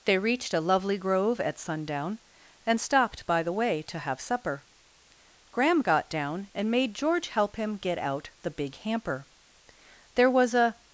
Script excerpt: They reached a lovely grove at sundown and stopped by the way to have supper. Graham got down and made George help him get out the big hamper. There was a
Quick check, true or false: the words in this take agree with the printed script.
true